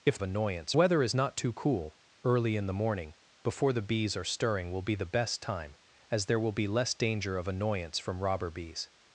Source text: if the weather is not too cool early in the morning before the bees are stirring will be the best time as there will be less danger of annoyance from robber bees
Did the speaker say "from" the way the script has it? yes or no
yes